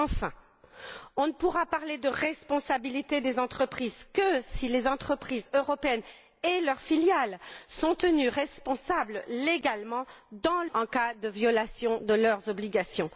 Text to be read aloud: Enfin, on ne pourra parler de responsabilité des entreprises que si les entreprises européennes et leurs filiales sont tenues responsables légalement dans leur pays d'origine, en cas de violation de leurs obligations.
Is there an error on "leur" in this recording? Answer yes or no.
yes